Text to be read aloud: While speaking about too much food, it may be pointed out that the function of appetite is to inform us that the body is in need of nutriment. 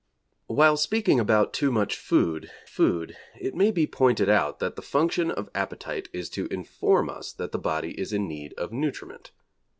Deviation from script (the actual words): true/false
true